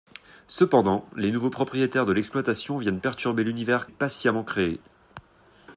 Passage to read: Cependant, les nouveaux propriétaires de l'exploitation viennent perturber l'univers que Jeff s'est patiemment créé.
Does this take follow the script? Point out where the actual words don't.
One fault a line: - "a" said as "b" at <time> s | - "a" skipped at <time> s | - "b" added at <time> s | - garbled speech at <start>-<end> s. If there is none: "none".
- "que Jeff s'est" skipped at 3.9 s